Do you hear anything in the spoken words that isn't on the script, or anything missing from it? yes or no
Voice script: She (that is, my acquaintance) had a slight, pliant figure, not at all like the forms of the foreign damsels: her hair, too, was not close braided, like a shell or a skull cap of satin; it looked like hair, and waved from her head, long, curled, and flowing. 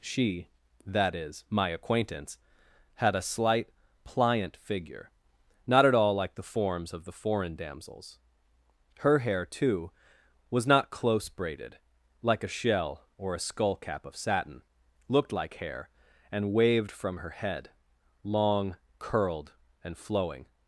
yes